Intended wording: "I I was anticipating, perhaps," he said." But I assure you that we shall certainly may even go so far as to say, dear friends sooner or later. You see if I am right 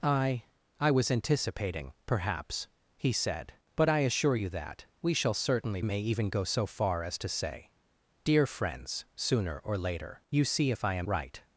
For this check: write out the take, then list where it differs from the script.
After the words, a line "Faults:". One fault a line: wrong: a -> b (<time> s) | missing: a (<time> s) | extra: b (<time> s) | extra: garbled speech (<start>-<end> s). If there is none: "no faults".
"I I was anticipating, perhaps," he said." But I assure you that we shall certainly may even go so far as to say, dear friends sooner or later. You see if I am right
Faults:
no faults